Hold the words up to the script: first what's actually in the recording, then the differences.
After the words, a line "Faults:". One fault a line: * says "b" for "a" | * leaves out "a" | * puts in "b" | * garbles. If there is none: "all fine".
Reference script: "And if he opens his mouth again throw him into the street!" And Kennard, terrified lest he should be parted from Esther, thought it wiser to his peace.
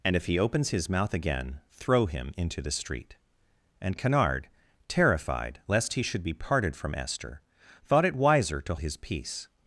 "And if he opens his mouth again throw him into the street!" And Kennard, terrified lest he should be parted from Esther, thought it wiser to his peace.
Faults:
all fine